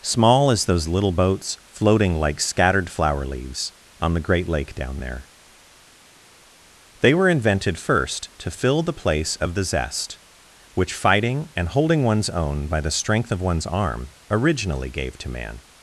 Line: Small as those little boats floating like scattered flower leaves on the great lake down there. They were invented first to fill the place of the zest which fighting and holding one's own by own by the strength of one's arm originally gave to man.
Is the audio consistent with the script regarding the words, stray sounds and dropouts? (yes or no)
no